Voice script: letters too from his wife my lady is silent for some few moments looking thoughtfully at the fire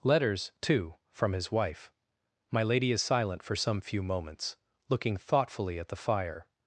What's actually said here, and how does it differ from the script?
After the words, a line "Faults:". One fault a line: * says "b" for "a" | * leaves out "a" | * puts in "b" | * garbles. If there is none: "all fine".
letters too from his wife my lady is silent for some few moments looking thoughtfully at the fire
Faults:
all fine